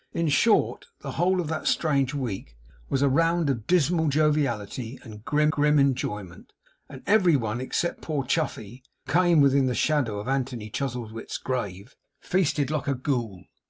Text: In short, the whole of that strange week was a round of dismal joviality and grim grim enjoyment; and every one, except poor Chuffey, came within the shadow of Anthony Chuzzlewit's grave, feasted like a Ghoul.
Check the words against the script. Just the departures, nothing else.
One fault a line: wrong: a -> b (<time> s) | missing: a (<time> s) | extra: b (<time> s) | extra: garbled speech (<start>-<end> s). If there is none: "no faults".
no faults